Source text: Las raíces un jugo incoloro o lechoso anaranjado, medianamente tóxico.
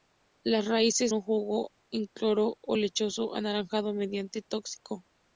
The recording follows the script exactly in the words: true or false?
true